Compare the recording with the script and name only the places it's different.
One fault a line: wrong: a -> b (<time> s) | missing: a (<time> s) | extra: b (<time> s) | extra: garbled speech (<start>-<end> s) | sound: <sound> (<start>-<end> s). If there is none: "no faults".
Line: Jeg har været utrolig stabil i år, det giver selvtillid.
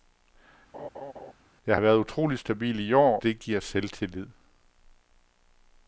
sound: laugh (0.7-1.3 s)